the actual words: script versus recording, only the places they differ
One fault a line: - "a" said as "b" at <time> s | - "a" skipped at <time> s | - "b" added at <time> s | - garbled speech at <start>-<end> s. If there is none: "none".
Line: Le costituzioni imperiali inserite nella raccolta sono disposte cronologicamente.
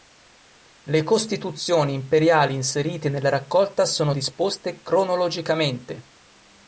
none